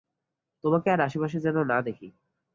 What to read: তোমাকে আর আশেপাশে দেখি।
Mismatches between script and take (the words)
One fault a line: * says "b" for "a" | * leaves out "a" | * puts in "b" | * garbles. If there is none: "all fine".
* puts in "যেন না"